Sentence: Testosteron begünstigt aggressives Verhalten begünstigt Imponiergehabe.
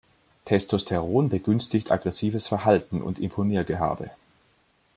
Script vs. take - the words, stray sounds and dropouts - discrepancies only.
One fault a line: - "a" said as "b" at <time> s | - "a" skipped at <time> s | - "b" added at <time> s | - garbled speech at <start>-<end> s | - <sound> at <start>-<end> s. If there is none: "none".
- "begünstigt" said as "und" at 3.0 s